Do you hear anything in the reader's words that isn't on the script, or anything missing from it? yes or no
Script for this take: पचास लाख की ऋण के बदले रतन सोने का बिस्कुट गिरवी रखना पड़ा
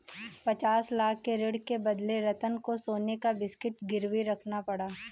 yes